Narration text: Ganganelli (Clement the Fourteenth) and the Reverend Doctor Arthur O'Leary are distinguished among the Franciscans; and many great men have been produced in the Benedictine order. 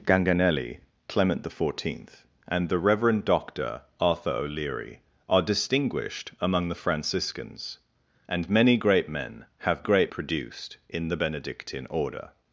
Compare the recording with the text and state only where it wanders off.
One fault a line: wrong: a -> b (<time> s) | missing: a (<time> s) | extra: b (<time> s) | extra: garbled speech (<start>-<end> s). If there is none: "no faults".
wrong: been -> great (9.8 s)